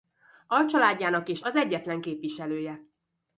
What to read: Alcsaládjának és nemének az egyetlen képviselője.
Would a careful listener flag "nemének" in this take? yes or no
yes